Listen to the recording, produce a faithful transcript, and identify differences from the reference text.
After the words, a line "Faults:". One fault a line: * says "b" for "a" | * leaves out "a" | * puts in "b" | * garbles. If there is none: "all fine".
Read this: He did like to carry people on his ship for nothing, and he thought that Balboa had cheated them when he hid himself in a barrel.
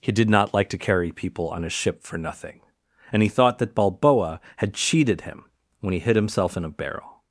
He did not like to carry people on his ship for nothing, and he thought that Balboa had cheated him when he hid himself in a barrel.
Faults:
* puts in "not"
* says "him" for "them"